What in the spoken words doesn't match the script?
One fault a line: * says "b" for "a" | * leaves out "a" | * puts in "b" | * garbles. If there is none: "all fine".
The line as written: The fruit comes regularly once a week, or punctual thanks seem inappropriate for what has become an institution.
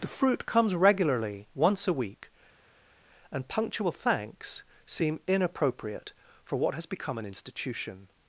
* says "and" for "or"